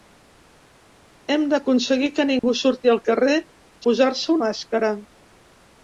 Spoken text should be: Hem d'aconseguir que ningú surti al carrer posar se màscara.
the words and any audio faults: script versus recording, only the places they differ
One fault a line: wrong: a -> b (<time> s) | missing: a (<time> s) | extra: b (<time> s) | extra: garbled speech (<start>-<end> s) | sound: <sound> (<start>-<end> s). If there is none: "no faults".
sound: dropout (2.4-2.4 s)